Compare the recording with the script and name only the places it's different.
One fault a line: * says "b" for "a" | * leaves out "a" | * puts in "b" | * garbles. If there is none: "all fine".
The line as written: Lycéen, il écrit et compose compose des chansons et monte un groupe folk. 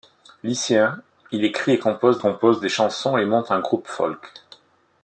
all fine